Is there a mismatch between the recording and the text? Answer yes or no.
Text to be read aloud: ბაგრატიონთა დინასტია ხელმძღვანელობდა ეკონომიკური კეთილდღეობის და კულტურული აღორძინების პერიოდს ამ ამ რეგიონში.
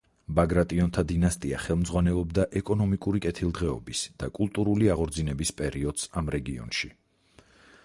yes